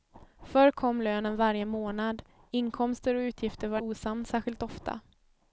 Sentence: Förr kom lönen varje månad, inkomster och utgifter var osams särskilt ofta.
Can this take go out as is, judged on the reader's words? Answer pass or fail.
pass